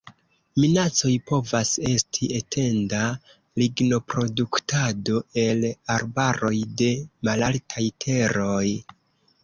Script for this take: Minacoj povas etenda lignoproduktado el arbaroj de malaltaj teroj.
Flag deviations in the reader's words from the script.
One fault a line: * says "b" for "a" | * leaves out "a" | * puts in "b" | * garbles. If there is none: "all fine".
* puts in "esti"